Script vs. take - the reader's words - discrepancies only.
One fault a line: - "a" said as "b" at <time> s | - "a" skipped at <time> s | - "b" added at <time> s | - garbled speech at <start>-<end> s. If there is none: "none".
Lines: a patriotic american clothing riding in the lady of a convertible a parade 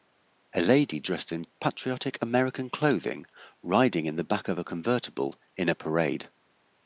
- "lady dressed in" added at 0.6 s
- "lady" said as "back" at 4.2 s
- "in" added at 5.5 s